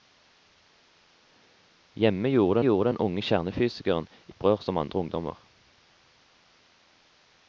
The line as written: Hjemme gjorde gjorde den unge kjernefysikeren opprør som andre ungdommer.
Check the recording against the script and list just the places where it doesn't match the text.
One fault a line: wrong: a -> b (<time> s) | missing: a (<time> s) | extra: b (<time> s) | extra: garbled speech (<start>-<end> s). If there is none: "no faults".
no faults